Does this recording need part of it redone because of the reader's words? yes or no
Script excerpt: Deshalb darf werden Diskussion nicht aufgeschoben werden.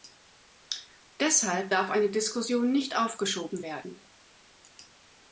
yes